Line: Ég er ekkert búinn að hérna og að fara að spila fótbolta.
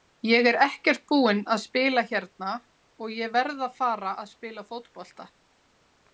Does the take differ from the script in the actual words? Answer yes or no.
yes